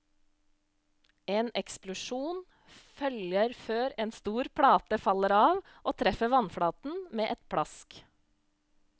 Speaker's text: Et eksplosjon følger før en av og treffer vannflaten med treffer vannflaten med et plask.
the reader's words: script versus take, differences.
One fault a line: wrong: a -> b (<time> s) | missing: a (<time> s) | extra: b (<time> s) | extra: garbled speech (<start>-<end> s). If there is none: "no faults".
wrong: Et -> En (1.3 s)
wrong: av og treffer vannflaten med -> stor plate faller av og (4.2 s)